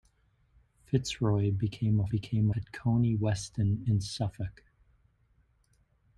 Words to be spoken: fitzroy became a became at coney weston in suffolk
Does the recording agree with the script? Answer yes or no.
yes